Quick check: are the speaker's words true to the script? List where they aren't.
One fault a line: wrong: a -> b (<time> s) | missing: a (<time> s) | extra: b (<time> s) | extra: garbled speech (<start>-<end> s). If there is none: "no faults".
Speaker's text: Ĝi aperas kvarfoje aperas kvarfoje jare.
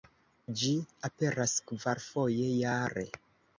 missing: aperas kvarfoje (2.5 s)